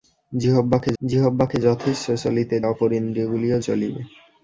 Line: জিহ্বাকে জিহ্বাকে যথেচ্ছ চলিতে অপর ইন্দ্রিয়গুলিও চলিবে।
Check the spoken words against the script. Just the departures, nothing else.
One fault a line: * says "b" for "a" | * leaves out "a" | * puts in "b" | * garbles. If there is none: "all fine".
all fine